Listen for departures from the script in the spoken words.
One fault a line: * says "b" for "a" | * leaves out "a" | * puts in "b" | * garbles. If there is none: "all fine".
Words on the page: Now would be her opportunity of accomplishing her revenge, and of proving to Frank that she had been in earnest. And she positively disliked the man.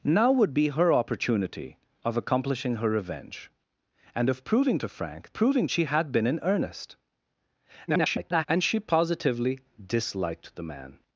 * says "proving" for "that"
* garbles